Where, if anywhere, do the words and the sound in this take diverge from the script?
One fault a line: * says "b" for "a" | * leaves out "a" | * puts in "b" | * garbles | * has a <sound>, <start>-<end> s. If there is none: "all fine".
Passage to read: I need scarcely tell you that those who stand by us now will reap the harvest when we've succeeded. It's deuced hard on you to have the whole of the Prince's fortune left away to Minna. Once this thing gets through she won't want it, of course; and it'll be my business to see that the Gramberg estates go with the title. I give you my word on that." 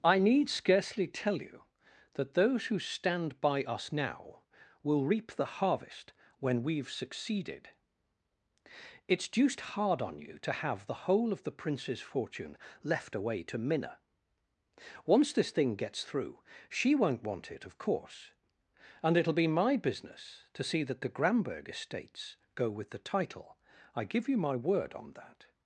all fine